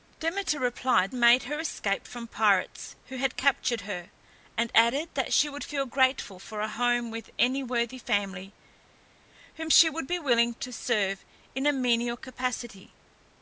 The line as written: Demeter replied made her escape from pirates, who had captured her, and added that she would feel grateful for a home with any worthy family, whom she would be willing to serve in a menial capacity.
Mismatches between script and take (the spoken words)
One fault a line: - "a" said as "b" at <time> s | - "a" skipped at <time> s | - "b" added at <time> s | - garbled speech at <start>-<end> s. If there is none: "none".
none